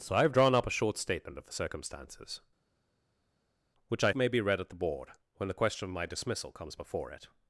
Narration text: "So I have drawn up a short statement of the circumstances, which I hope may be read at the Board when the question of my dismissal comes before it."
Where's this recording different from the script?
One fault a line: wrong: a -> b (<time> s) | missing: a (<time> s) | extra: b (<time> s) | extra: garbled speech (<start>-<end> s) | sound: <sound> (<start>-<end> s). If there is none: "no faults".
missing: hope (4.1 s)